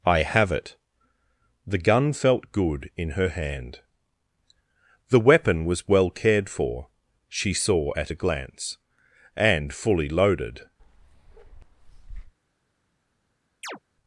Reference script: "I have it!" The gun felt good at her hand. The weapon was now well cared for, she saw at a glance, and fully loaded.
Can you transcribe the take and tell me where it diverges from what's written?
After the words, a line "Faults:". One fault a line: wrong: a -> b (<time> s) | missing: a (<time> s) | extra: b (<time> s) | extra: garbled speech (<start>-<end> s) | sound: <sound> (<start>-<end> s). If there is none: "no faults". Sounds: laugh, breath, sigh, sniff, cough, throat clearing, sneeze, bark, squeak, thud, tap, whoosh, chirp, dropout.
"I have it!" The gun felt good in her hand. The weapon was well cared for, she saw at a glance, and fully loaded.
Faults:
wrong: at -> in (3.0 s)
missing: now (5.9 s)
sound: bark (10.8-12.3 s)
sound: chirp (13.6-13.8 s)